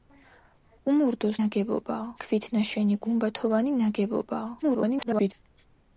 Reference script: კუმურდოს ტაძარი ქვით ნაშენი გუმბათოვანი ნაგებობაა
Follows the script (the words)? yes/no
no